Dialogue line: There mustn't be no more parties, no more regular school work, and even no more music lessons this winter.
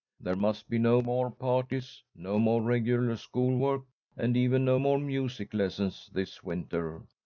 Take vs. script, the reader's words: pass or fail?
fail